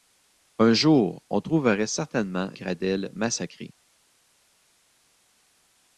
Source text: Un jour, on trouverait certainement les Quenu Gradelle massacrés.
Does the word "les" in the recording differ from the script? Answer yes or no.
yes